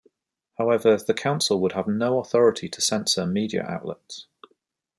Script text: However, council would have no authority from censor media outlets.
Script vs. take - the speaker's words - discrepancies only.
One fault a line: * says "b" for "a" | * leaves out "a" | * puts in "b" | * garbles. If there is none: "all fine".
* puts in "the"
* says "to" for "from"